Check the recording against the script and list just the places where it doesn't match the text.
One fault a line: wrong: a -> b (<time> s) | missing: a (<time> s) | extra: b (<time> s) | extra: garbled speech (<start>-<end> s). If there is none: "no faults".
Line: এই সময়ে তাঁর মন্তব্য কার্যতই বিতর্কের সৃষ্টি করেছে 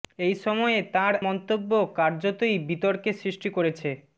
no faults